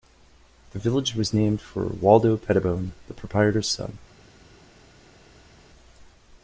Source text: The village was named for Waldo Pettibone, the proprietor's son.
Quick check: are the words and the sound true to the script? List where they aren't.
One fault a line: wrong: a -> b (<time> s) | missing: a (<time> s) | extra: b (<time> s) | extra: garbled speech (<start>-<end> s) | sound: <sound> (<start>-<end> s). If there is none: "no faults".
no faults